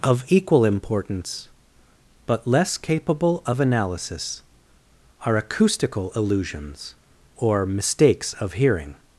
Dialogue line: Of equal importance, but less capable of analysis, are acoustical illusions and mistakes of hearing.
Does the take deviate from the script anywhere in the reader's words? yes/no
yes